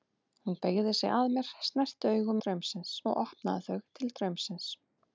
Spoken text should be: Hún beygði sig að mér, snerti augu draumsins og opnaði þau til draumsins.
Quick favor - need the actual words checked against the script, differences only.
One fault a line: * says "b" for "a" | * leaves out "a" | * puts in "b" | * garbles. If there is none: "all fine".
all fine